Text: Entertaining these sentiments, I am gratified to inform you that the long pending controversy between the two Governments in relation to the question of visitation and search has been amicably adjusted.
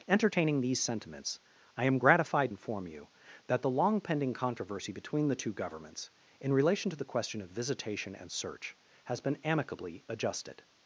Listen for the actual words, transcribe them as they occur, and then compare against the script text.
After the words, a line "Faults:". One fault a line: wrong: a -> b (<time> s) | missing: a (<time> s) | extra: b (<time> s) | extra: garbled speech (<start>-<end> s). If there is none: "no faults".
Entertaining these sentiments, I am gratified inform you that the long pending controversy between the two Governments in relation to the question of visitation and search has been amicably adjusted.
Faults:
missing: to (2.5 s)